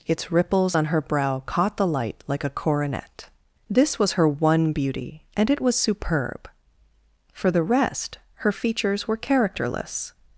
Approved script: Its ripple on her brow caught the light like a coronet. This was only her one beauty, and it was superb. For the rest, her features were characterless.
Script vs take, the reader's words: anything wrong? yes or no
yes